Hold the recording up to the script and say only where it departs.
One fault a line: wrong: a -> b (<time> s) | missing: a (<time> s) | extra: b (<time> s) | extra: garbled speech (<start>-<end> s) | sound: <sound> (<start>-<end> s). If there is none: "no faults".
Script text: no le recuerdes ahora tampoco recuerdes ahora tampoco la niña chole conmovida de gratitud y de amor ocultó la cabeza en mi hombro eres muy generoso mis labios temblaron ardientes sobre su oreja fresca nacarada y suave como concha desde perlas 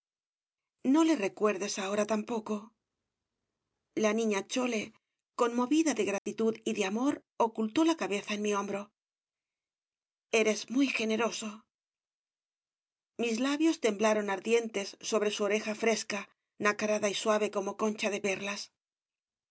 missing: recuerdes ahora tampoco (2.5 s)
sound: dropout (6.2-6.3 s)
wrong: desde -> de (18.1 s)